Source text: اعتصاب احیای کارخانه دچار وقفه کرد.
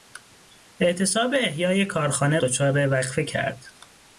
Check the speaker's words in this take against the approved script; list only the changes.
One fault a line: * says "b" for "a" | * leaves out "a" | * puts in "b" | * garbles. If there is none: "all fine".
all fine